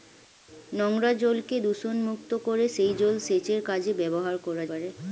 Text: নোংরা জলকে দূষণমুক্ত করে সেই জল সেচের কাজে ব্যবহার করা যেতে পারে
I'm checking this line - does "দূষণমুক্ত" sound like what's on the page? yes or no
yes